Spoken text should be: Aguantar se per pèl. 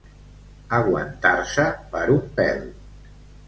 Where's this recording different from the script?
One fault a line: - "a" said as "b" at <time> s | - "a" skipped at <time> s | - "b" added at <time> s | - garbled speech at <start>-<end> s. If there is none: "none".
- "un" added at 2.1 s